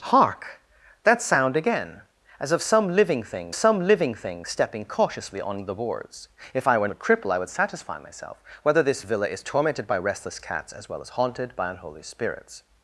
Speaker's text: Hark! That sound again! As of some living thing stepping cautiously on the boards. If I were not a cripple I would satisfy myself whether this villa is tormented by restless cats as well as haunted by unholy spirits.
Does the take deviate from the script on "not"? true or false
true